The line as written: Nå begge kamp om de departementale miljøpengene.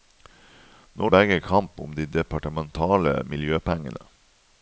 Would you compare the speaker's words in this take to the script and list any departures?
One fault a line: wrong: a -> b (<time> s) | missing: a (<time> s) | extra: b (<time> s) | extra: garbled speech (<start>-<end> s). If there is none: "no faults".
no faults